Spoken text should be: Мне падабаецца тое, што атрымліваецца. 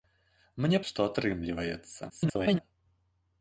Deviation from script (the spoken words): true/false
true